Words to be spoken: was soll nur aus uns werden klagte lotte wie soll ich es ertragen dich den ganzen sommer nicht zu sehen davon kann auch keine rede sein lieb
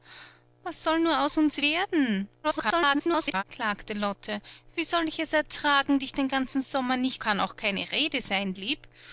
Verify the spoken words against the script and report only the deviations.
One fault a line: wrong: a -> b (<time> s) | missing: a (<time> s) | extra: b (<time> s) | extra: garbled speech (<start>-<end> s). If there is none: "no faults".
extra: garbled speech (2.4-3.4 s)
missing: zu sehen davon (7.2 s)